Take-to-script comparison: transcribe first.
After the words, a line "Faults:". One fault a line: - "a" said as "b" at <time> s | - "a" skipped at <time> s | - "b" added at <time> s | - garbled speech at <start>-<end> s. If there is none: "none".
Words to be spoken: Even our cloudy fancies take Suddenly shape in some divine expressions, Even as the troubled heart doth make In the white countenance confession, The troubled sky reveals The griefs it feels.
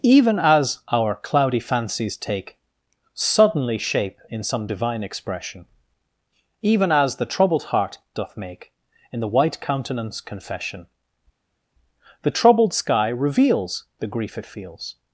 Even as our cloudy fancies take Suddenly shape in some divine expression, Even as the troubled heart doth make In the white countenance confession, The troubled sky reveals The grief it feels.
Faults:
- "as" added at 0.4 s
- "expressions" said as "expression" at 5.0 s
- "griefs" said as "grief" at 14.1 s